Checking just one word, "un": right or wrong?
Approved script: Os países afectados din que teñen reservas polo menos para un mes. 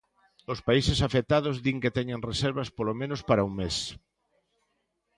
right